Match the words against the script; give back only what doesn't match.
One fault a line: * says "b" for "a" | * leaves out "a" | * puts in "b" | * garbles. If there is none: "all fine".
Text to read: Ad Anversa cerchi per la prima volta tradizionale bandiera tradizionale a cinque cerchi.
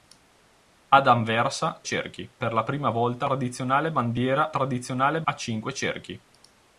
all fine